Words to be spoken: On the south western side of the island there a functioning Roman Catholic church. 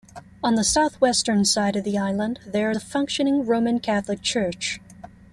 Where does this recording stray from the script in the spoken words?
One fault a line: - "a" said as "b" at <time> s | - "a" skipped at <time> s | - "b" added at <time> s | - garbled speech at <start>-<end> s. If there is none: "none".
none